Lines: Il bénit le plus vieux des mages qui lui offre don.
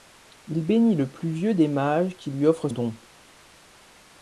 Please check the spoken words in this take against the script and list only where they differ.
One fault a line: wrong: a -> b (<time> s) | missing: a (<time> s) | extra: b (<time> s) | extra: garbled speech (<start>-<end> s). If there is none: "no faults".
no faults